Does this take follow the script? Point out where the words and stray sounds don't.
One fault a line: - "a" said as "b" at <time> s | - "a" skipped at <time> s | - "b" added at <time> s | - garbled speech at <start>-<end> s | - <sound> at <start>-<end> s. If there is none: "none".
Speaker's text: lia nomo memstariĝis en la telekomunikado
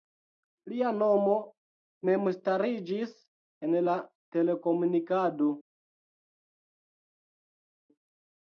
none